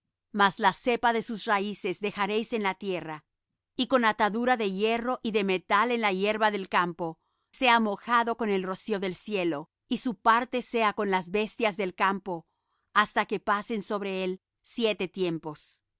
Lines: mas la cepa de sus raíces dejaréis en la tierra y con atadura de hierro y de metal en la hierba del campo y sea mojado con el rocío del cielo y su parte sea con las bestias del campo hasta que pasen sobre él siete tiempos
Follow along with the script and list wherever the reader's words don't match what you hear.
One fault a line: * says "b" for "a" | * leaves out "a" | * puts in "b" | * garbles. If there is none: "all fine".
* leaves out "y"